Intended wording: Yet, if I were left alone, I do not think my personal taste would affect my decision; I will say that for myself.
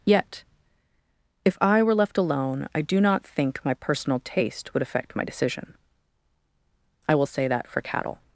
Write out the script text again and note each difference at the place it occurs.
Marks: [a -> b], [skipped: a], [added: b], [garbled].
Yet, if I were left alone, I do not think my personal taste would affect my decision; I will say that for [myself. -> cattle]